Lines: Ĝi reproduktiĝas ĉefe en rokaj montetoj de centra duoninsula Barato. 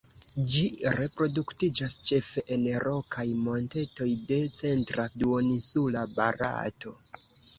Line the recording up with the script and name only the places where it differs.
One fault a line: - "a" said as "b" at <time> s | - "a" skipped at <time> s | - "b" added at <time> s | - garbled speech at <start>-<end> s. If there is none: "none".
none